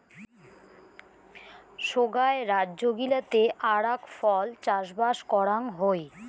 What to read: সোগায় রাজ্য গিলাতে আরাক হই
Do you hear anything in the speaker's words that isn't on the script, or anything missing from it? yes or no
yes